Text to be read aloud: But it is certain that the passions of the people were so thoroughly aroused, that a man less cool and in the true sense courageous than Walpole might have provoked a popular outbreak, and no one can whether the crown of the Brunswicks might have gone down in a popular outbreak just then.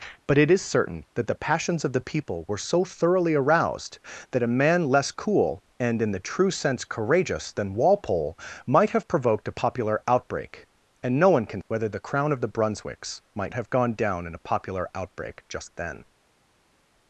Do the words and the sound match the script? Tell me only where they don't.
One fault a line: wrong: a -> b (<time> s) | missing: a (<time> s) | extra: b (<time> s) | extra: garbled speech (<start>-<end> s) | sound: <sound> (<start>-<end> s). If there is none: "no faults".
no faults